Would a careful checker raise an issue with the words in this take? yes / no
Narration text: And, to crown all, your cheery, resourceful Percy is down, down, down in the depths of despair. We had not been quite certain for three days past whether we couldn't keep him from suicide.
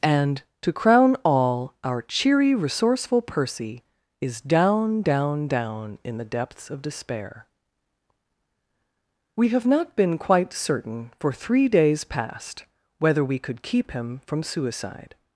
yes